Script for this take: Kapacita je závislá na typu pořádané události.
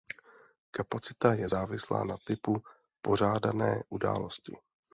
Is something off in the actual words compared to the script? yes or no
no